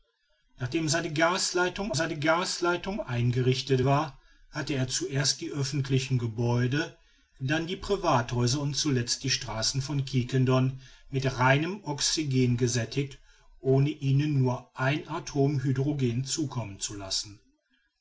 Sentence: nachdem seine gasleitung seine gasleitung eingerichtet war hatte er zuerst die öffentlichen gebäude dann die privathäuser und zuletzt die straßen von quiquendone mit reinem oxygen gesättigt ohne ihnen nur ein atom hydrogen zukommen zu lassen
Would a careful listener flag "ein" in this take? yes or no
no